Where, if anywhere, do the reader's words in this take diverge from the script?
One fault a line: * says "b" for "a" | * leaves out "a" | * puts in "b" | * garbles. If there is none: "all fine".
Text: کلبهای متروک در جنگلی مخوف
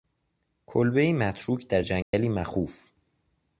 all fine